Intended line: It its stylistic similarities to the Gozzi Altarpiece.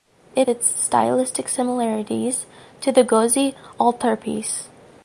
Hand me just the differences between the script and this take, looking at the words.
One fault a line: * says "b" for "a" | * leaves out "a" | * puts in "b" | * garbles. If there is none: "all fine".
all fine